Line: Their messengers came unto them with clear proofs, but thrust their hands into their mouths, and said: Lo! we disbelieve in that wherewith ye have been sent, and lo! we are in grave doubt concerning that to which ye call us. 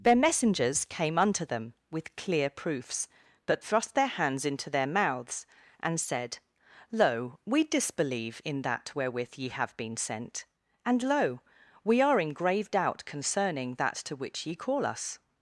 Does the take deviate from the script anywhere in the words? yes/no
no